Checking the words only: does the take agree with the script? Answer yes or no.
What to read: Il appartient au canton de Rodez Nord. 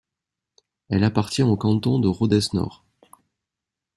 no